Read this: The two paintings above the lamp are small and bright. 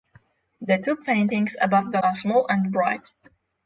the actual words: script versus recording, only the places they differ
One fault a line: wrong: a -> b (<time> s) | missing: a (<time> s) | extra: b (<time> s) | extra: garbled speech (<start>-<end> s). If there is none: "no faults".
missing: lamp (2.0 s)